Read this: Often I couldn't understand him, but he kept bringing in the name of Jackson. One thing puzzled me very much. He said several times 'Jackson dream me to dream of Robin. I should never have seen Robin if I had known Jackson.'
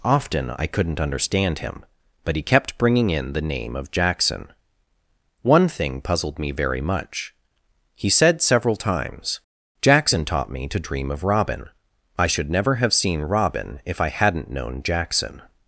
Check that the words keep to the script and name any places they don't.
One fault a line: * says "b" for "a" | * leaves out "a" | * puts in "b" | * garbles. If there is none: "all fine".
* says "taught" for "dream"
* says "hadn't" for "had"